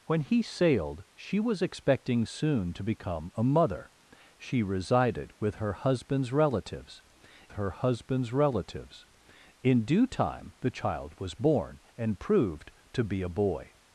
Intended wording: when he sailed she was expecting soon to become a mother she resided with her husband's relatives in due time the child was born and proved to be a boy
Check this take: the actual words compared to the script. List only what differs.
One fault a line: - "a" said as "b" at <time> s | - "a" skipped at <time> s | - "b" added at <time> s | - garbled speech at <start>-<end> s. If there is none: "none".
- "her husband's relatives" added at 7.5 s